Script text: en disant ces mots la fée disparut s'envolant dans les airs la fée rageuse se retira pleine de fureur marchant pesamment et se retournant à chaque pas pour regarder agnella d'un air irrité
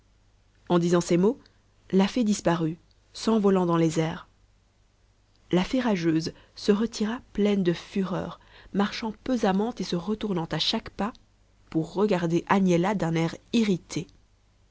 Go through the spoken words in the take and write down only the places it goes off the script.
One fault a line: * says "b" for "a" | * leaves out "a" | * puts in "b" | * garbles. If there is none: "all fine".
all fine